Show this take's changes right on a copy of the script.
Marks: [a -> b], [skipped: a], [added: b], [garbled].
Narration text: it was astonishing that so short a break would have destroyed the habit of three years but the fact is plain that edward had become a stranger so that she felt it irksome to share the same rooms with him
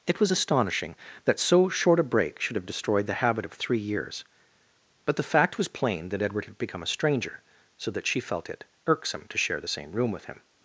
it was astonishing that so short a break [would -> should] have destroyed the habit of three years but the fact [is -> was] plain that edward had become a stranger so that she felt it irksome to share the same [rooms -> room] with him